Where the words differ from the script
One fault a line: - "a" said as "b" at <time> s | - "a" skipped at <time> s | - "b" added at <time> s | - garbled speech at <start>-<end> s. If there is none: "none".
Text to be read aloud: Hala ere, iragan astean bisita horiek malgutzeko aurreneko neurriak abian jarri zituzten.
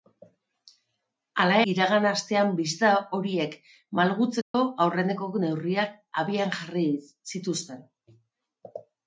- "ere" skipped at 1.6 s